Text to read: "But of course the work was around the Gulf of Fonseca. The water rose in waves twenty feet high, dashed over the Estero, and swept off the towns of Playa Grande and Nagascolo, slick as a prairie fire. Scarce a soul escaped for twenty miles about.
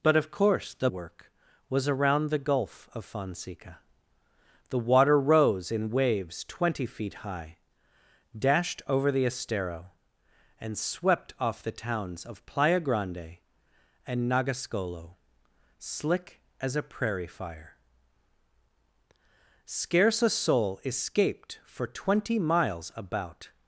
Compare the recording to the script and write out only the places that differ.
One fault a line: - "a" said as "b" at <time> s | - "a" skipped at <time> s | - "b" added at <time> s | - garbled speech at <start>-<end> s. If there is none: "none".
none